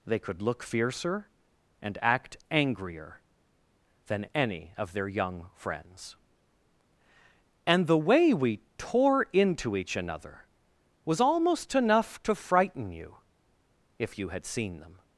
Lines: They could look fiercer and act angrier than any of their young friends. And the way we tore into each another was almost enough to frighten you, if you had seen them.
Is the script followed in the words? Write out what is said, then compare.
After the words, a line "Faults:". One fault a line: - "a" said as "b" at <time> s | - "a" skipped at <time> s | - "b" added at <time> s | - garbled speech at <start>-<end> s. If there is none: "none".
They could look fiercer and act angrier than any of their young friends. And the way we tore into each another was almost enough to frighten you, if you had seen them.
Faults:
none